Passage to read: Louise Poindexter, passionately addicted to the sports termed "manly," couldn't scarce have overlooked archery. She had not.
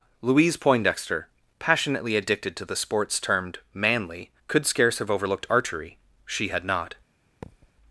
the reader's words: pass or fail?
fail